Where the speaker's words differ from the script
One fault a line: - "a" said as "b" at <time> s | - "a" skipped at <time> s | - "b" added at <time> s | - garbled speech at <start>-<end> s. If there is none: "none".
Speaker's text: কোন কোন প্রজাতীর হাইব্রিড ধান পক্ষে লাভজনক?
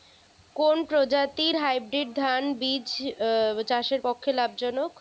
- "কোন" skipped at 0.8 s
- "বীজ চাষের" added at 2.6 s